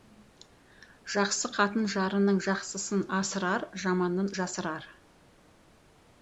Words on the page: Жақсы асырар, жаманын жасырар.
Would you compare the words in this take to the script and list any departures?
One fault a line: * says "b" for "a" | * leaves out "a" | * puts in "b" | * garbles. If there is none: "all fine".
* puts in "қатын жарының жақсысын"